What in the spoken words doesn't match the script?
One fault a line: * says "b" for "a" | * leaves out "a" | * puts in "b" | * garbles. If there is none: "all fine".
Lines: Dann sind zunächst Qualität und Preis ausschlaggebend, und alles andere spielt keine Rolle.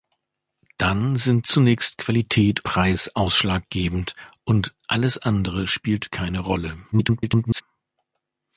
* leaves out "und"
* garbles